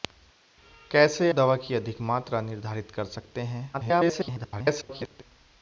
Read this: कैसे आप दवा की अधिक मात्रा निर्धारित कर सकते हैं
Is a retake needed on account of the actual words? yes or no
yes